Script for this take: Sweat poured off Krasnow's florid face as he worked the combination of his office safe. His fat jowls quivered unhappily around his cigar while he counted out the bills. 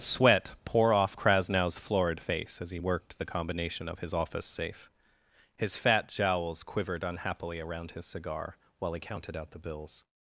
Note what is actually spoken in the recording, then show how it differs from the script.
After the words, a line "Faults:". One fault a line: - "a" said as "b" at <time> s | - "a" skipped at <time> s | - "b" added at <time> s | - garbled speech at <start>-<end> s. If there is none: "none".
Sweat pour off Krasnow's florid face as he worked the combination of his office safe. His fat jowls quivered unhappily around his cigar while he counted out the bills.
Faults:
- "poured" said as "pour" at 0.7 s